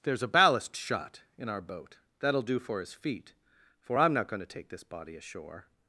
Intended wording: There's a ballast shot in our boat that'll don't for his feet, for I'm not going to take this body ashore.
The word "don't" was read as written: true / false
false